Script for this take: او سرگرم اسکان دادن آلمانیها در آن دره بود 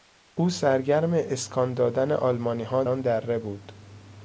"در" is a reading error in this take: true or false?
true